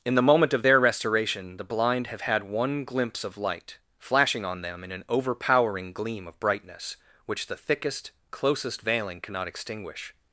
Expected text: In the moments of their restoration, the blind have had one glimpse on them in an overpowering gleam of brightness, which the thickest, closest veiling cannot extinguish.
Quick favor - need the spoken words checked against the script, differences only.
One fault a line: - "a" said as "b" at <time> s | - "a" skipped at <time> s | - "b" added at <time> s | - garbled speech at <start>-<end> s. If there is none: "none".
- "moments" said as "moment" at 0.2 s
- "of light flashing" added at 3.2 s